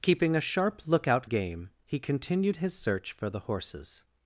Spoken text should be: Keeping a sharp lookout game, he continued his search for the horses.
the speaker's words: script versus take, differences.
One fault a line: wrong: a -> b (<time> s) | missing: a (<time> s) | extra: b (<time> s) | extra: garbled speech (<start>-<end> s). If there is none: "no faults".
no faults